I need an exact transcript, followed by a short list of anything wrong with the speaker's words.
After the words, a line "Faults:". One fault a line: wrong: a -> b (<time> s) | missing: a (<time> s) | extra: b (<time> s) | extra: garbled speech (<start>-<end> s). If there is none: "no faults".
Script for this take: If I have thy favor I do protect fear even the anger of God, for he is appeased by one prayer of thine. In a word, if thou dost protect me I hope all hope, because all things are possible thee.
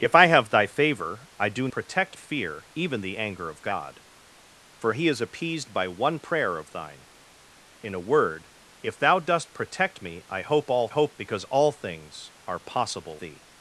If I have thy favor I do protect fear even the anger of God, for he is appeased by one prayer of thine. In a word, if thou dost protect me I hope all hope, because all things are possible thee.
Faults:
no faults